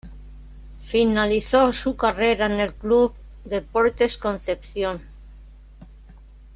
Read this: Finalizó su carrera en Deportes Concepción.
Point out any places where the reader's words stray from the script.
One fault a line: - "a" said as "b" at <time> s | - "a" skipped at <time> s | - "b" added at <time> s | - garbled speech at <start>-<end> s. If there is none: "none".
- "el club" added at 2.5 s